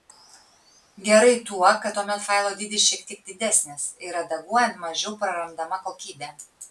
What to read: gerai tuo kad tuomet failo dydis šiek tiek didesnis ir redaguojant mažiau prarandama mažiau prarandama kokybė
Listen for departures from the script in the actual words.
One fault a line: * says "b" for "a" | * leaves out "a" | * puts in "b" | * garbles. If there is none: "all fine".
* leaves out "mažiau prarandama"